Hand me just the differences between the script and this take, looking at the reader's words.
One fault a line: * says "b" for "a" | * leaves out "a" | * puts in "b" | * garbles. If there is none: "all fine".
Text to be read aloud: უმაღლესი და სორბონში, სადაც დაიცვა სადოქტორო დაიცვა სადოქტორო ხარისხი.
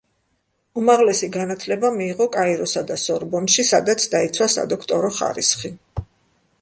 * puts in "განათლება მიიღო კაიროსა"
* leaves out "დაიცვა სადოქტორო"